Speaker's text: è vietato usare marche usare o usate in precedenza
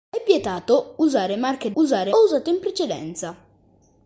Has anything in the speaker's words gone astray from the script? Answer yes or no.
no